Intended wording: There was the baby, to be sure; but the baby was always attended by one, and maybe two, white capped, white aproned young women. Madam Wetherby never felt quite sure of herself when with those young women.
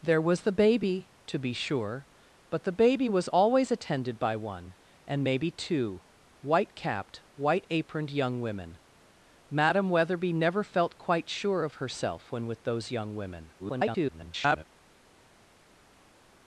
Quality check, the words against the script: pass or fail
fail